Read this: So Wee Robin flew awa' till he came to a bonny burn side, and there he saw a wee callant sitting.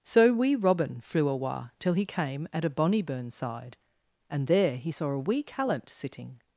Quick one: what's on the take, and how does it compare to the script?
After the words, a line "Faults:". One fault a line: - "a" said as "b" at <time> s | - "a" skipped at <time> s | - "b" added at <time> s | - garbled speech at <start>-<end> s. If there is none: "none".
So Wee Robin flew awa' till he came at a bonny burn side, and there he saw a wee callant sitting.
Faults:
- "to" said as "at" at 2.5 s